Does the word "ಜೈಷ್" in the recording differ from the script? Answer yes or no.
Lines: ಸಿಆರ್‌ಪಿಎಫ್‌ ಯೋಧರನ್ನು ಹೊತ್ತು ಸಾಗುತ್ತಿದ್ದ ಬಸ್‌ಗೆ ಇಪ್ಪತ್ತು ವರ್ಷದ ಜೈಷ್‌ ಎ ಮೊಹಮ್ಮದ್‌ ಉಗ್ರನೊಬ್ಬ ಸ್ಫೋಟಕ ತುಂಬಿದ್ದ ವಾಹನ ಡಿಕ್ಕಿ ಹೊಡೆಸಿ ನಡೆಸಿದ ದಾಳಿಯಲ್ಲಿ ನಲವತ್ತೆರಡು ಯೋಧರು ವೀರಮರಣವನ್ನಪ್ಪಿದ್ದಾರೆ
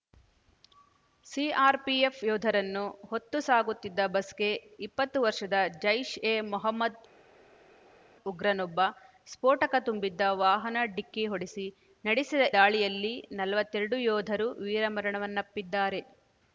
no